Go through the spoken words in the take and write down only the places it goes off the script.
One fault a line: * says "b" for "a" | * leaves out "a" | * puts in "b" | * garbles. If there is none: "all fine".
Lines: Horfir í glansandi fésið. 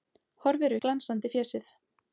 all fine